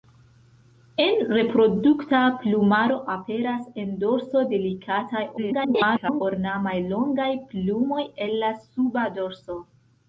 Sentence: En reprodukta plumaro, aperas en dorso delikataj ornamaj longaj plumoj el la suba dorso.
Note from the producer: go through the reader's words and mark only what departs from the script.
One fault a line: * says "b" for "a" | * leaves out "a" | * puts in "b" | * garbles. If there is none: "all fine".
* garbles